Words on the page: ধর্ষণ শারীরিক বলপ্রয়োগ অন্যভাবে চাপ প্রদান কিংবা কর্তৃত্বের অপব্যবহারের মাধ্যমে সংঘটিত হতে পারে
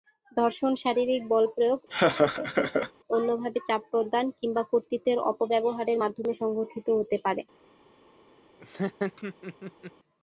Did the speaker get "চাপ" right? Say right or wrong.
right